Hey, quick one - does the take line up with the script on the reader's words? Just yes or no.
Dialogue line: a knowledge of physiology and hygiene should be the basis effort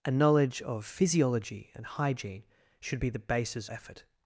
yes